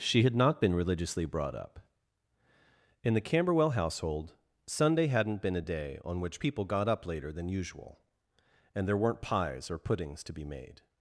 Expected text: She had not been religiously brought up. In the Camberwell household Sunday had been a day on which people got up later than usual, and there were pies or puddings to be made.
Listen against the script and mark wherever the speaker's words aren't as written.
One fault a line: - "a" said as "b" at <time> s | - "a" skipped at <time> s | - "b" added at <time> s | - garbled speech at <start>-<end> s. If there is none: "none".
- "had" said as "hadn't" at 5.0 s
- "were" said as "weren't" at 9.0 s